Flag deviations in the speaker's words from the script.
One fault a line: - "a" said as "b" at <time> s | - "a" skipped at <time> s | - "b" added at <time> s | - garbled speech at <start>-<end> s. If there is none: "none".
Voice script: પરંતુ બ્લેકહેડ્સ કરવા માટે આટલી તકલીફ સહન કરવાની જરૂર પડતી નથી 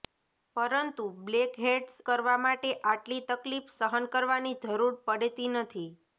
none